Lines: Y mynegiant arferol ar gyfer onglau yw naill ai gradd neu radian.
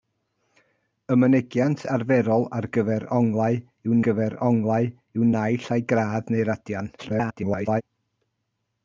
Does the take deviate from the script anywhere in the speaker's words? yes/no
yes